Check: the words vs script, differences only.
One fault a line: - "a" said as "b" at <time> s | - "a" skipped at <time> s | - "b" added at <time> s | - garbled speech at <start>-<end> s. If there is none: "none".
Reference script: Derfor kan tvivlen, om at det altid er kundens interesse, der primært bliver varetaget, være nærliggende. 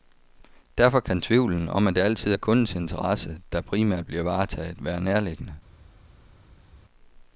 none